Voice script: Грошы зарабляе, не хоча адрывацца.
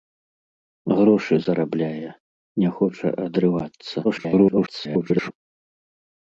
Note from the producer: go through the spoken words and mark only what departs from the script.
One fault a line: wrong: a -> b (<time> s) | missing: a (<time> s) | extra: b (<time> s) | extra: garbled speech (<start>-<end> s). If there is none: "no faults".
extra: garbled speech (4.0-5.3 s)